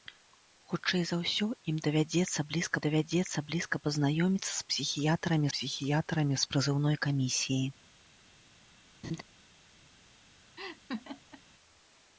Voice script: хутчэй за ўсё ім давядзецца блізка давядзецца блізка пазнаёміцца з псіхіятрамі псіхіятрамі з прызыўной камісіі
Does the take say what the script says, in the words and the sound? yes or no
no